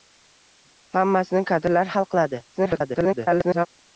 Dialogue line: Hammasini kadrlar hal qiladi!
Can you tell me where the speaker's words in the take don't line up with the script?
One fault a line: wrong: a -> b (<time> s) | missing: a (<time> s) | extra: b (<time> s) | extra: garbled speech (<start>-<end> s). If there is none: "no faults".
extra: garbled speech (2.5-3.7 s)